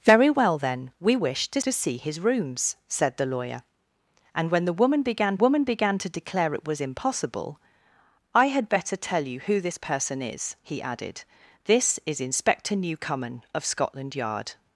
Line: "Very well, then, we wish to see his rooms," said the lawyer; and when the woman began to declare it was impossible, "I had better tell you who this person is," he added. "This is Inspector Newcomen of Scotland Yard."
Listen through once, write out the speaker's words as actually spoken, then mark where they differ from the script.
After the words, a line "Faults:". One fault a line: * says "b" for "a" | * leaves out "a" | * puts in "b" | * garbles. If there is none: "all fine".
"Very well, then, we wish to to see his rooms," said the lawyer; and when the woman began woman began to declare it was impossible, "I had better tell you who this person is," he added. "This is Inspector Newcomen of Scotland Yard."
Faults:
* puts in "to"
* puts in "woman began"